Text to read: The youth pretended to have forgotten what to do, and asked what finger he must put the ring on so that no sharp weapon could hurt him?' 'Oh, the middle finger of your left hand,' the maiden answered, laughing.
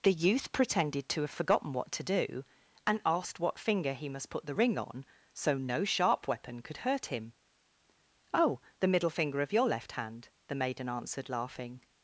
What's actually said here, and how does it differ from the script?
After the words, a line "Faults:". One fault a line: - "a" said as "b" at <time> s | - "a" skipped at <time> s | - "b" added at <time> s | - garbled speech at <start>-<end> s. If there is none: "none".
The youth pretended to have forgotten what to do, and asked what finger he must put the ring on so no sharp weapon could hurt him?' 'Oh, the middle finger of your left hand,' the maiden answered, laughing.
Faults:
- "that" skipped at 5.6 s